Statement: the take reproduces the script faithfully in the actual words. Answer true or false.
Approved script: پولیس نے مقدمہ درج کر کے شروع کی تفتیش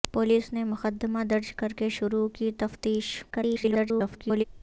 false